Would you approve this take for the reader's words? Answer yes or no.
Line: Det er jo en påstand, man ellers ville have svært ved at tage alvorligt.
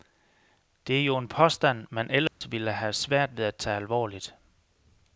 yes